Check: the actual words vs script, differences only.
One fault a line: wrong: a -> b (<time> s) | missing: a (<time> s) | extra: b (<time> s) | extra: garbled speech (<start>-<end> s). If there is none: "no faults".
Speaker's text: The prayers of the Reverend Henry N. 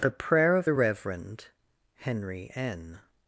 wrong: prayers -> prayer (0.1 s)